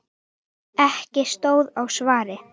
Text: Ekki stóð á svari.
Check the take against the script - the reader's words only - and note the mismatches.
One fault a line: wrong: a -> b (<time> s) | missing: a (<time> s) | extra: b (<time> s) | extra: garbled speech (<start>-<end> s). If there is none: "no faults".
no faults